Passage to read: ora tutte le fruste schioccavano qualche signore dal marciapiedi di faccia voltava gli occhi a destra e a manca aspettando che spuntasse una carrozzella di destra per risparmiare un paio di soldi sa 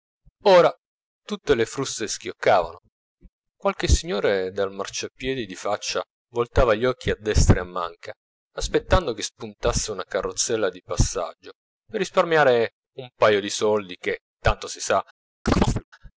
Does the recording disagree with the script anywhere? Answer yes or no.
yes